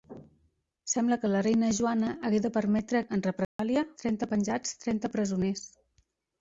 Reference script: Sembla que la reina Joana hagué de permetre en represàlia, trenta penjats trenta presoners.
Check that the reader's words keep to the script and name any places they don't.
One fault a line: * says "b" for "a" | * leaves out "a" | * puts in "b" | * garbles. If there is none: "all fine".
all fine